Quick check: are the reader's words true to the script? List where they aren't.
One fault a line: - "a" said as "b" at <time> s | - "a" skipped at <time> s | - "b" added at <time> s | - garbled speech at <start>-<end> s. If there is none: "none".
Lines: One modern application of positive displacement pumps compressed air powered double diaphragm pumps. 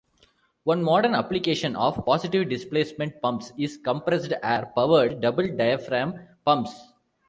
- "is" added at 3.6 s